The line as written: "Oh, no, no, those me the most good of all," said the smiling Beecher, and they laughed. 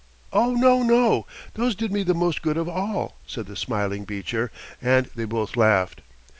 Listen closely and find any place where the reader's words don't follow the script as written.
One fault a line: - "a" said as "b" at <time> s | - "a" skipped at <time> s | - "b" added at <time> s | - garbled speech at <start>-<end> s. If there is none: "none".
- "did" added at 1.8 s
- "both" added at 5.2 s